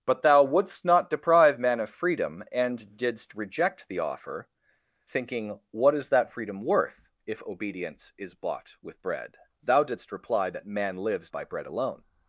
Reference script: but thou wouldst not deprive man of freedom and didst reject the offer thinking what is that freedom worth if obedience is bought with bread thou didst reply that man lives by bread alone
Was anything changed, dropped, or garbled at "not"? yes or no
no